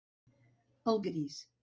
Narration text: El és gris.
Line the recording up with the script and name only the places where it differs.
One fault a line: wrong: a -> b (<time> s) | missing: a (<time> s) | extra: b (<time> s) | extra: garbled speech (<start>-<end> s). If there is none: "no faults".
no faults